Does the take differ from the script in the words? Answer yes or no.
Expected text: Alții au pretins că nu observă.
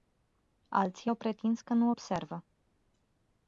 no